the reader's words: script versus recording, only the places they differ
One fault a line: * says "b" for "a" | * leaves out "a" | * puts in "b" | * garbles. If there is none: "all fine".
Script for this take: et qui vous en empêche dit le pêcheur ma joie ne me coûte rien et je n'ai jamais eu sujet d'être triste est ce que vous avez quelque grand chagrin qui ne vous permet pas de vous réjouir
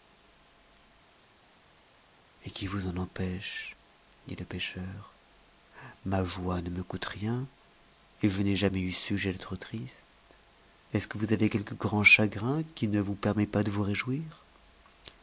all fine